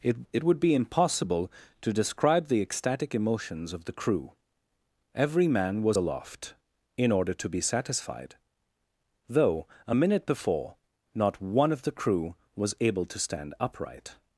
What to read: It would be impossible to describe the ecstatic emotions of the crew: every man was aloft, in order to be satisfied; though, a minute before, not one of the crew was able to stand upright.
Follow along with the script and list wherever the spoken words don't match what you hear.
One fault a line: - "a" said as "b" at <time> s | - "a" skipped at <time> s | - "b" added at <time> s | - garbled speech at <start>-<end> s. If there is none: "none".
- "it" added at 0.3 s